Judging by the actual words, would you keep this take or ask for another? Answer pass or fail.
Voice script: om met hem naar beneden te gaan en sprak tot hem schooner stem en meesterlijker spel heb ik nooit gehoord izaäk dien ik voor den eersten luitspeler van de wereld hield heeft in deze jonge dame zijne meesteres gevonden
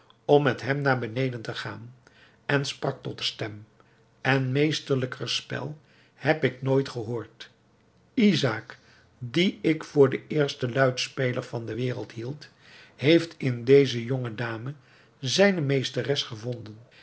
fail